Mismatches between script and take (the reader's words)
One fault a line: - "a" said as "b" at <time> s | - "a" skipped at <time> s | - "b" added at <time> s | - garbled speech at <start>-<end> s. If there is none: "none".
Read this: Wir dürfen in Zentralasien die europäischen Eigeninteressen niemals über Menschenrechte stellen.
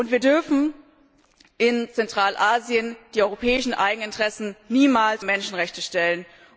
- "über" skipped at 5.2 s